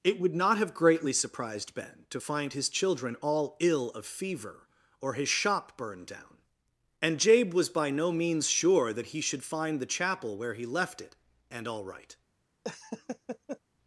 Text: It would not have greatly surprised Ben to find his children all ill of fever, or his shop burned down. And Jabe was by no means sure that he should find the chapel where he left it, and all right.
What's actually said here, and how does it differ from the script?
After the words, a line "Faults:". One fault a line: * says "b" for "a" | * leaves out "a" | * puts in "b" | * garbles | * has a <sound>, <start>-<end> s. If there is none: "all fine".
It would not have greatly surprised Ben to find his children all ill of fever, or his shop burned down. And Jabe was by no means sure that he should find the chapel where he left it, and all right.
Faults:
* has a laugh, 12.6-13.6 s